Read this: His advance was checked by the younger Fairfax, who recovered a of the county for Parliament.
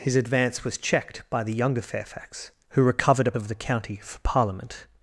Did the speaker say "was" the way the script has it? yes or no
yes